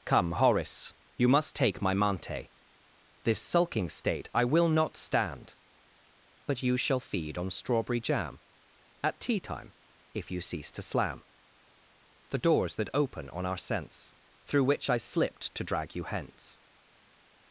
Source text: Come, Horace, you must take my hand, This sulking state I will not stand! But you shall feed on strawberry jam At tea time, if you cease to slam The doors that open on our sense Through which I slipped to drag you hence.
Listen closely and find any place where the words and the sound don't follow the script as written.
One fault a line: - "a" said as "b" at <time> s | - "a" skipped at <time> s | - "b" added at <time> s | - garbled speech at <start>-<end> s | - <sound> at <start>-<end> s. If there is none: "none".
- "hand" said as "mante" at 1.9 s